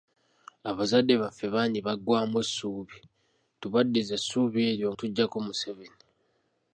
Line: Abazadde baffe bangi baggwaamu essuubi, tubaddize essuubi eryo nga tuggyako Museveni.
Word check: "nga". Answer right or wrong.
wrong